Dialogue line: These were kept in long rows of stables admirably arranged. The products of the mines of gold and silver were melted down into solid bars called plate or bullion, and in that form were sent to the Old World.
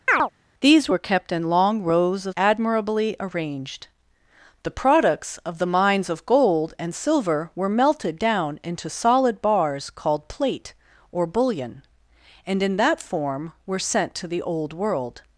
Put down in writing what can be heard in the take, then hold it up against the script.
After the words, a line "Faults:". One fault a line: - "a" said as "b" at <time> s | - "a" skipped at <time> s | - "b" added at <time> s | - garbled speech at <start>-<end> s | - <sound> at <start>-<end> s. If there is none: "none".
These were kept in long rows of admirably arranged. The products of the mines of gold and silver were melted down into solid bars called plate or bullion, and in that form were sent to the Old World.
Faults:
- chirp at 0.1-0.3 s
- "stables" skipped at 2.4 s